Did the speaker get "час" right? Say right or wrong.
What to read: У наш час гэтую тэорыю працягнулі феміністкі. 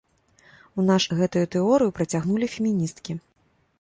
wrong